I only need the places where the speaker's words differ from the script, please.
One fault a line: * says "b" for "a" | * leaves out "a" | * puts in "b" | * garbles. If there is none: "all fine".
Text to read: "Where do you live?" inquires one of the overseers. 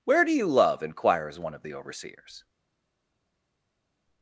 * says "love" for "live"